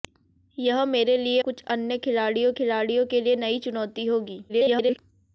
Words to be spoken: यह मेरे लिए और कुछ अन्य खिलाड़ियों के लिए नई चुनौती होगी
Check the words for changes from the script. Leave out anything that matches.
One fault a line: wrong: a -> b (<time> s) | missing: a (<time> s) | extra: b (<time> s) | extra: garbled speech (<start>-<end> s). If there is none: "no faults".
missing: और (1.4 s)
extra: खिलाड़ियों (2.5 s)
extra: garbled speech (4.5-5.0 s)